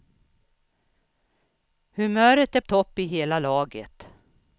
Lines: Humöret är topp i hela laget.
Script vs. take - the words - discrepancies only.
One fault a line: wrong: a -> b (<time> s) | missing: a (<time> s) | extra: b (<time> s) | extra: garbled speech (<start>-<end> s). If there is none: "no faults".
no faults